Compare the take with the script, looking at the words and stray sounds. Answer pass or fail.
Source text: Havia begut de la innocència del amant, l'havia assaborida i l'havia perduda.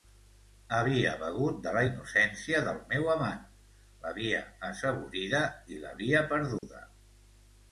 fail